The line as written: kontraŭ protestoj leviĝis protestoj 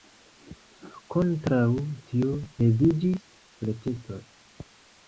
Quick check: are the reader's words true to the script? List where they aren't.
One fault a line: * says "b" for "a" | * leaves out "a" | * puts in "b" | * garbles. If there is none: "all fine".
* says "tio" for "protestoj"